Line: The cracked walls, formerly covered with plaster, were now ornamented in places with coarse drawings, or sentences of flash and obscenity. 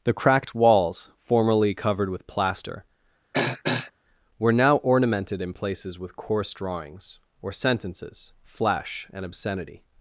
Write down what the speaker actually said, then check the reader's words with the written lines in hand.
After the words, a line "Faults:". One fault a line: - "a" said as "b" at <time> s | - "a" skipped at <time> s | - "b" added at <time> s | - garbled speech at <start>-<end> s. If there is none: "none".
The cracked walls, formerly covered with plaster, were now ornamented in places with coarse drawings, or sentences flash and obscenity.
Faults:
- "of" skipped at 8.3 s